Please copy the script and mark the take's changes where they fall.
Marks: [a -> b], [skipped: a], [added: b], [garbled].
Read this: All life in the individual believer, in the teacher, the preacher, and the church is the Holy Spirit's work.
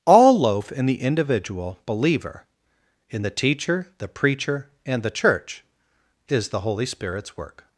All [life -> loaf] in the individual believer, in the teacher, the preacher, and the church is the Holy Spirit's work.